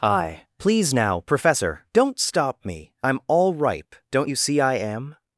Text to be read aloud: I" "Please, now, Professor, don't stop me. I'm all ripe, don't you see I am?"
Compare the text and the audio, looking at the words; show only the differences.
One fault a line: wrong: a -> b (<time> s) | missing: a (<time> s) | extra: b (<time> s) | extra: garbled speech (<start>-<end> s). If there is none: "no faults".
no faults